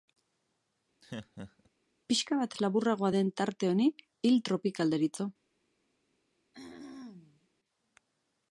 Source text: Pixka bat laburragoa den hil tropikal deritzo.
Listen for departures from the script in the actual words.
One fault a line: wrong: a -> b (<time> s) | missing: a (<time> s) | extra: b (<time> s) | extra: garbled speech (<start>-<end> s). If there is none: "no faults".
extra: tarte honi (3.4 s)